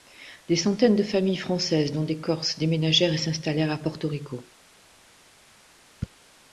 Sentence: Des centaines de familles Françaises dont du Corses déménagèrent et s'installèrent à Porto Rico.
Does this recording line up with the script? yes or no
no